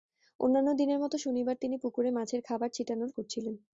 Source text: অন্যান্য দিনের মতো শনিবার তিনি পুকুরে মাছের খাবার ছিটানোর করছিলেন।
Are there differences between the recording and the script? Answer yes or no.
no